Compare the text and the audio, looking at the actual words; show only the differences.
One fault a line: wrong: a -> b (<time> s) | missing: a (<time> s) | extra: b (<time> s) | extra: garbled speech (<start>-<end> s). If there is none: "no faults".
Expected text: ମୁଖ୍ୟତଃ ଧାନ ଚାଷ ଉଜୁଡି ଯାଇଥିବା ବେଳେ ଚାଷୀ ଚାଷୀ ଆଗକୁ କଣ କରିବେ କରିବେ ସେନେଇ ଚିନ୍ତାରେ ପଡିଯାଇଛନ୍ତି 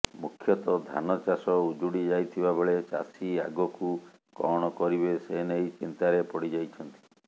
missing: ଚାଷୀ (3.3 s)
missing: କରିବେ (5.2 s)